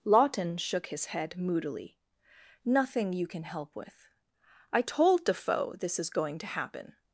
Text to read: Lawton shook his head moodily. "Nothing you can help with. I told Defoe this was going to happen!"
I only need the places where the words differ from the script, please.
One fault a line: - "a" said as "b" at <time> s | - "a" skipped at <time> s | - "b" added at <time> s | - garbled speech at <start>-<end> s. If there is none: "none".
- "was" said as "is" at 6.0 s